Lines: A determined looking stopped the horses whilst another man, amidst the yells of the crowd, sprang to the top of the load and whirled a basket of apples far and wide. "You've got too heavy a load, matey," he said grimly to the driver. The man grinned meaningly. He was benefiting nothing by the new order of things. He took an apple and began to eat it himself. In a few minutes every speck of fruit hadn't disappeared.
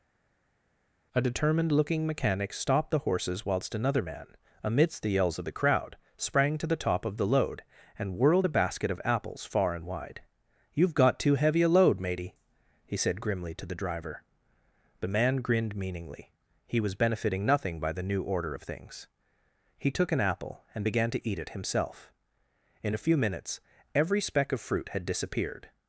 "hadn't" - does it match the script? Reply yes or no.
no